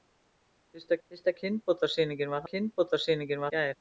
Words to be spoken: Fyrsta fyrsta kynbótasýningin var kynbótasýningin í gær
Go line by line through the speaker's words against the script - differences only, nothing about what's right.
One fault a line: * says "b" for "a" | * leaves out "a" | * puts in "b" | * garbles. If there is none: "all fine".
all fine